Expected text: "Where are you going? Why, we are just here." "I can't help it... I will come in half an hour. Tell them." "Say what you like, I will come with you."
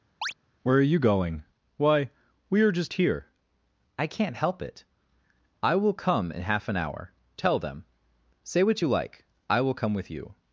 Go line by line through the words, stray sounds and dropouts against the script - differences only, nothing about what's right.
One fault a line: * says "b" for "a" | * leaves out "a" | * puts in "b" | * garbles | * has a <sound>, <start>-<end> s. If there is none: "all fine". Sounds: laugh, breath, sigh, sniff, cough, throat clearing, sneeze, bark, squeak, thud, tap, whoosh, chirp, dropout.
* has a chirp, 0.2-0.3 s